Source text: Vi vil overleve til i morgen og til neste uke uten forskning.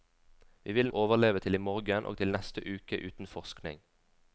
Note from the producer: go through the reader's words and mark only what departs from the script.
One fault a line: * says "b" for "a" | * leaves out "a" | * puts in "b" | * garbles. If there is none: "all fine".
all fine